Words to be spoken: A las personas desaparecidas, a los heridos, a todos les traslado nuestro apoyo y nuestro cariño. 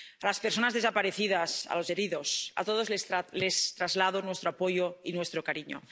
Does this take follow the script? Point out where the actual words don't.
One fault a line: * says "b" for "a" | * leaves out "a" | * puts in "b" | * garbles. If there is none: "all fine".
all fine